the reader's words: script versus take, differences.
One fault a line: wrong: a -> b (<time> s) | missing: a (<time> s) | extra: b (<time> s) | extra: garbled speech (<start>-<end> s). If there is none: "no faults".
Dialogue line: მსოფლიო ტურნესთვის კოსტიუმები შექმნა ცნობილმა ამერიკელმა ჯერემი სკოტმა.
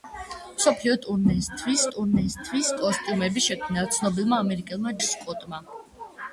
extra: ტურნესთვის (1.9 s)
missing: ჯერემი (4.9 s)